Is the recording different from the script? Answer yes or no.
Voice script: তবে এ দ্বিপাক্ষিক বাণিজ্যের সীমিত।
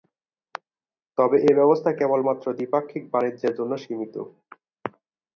yes